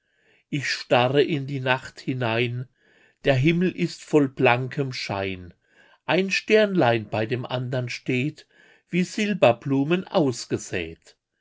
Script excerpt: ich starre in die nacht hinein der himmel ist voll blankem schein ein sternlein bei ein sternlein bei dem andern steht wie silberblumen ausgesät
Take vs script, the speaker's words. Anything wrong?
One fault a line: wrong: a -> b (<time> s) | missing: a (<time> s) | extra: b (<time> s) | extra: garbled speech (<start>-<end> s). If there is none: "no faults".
missing: ein sternlein bei (7.3 s)